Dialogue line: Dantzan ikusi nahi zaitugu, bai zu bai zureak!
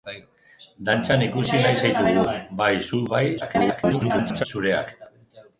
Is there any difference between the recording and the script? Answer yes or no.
yes